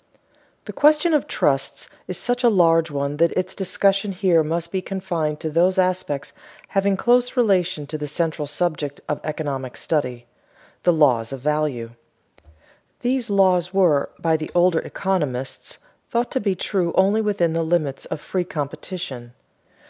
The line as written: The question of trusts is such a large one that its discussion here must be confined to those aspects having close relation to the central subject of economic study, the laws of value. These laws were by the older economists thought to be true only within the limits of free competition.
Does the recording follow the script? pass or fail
pass